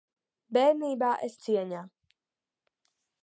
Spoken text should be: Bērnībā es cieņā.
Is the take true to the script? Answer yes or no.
yes